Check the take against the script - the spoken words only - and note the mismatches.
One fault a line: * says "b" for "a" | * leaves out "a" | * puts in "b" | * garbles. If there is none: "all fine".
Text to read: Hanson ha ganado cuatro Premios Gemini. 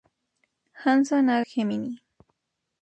* leaves out "ganado cuatro Premios"